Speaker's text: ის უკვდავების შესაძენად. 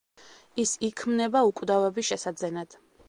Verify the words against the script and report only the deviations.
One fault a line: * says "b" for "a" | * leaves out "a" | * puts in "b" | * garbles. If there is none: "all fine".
* puts in "იქმნება"